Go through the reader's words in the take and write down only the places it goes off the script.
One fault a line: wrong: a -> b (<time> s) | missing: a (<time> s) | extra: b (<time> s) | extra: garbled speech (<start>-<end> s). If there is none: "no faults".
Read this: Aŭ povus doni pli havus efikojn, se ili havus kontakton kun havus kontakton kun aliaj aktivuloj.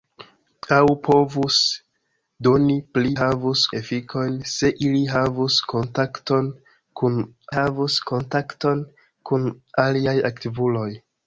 no faults